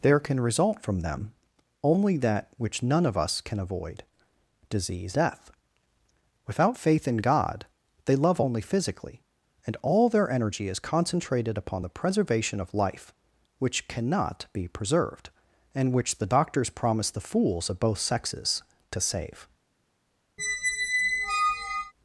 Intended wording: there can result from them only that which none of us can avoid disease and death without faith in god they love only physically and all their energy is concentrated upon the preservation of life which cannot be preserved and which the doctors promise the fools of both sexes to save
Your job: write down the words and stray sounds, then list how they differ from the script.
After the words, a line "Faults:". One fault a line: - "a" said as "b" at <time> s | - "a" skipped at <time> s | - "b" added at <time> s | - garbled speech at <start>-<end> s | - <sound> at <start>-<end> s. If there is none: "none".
there can result from them only that which none of us can avoid disease death without faith in god they love only physically and all their energy is concentrated upon the preservation of life which cannot be preserved and which the doctors promise the fools of both sexes to save
Faults:
- "and" skipped at 5.2 s
- squeak at 20.4-21.9 s